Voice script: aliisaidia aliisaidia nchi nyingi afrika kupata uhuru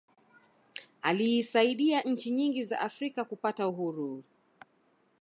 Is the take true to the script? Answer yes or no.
no